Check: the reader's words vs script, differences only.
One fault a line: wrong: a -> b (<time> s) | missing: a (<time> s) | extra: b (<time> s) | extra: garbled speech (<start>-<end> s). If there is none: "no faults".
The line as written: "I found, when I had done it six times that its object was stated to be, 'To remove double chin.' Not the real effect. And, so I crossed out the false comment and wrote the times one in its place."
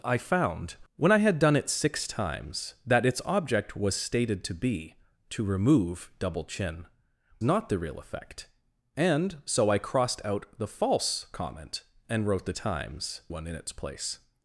no faults